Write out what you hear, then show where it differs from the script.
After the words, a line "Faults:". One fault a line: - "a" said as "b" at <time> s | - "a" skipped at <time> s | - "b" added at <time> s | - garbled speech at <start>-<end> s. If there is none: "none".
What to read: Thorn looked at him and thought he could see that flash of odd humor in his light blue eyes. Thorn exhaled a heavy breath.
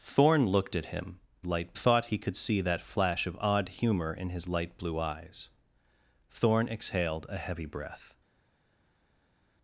Thorn looked at him light thought he could see that flash of odd humor in his light blue eyes. Thorn exhaled a heavy breath.
Faults:
- "and" said as "light" at 1.4 s